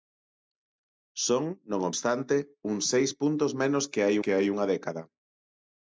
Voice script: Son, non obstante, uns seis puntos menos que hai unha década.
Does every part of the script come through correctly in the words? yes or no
no